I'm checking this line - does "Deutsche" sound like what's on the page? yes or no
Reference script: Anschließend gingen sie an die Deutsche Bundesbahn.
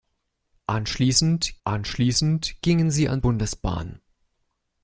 no